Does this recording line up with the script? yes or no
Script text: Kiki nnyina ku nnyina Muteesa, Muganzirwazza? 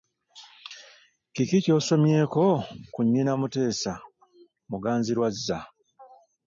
no